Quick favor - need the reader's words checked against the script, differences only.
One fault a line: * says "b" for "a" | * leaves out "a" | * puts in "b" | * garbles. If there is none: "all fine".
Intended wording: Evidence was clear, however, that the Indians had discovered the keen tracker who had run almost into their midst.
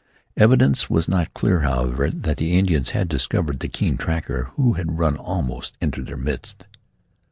* puts in "not"